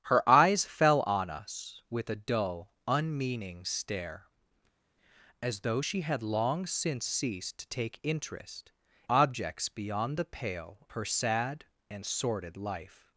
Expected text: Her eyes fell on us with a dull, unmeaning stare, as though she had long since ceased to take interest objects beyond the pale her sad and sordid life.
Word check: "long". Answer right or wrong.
right